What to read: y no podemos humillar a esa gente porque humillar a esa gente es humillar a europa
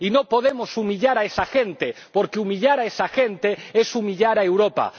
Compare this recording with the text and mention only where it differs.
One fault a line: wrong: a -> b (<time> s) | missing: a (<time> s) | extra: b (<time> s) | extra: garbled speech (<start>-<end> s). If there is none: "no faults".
no faults